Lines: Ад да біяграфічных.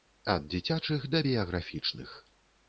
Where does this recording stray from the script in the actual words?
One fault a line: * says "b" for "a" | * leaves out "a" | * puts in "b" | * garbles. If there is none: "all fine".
* puts in "дзіцячых"